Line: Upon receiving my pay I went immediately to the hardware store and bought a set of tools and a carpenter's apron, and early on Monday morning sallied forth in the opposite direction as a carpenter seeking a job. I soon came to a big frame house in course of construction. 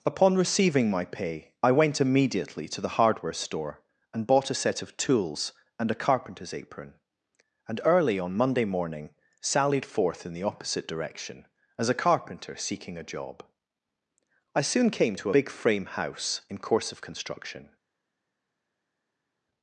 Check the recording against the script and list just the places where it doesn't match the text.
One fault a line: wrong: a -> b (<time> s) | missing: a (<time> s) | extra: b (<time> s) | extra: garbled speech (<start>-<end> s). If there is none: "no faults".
missing: a (15.3 s)